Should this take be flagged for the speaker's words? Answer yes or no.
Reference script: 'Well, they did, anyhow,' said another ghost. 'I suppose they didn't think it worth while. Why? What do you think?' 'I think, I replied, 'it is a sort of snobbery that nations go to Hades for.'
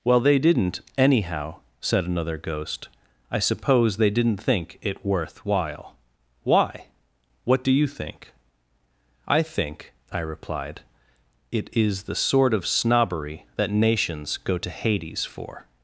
yes